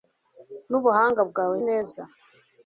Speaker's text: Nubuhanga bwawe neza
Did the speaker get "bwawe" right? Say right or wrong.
right